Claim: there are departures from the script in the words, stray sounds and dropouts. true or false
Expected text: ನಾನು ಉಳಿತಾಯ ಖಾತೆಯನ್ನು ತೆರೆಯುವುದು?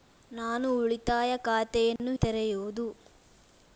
true